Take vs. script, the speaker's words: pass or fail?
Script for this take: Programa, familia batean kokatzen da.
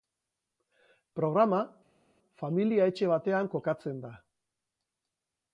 fail